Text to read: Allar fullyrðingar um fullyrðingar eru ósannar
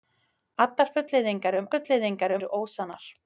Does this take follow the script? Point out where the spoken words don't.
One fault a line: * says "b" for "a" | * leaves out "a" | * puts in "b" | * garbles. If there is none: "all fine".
all fine